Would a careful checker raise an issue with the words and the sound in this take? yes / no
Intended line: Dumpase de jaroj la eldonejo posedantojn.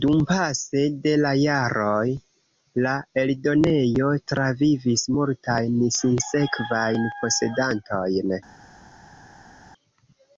yes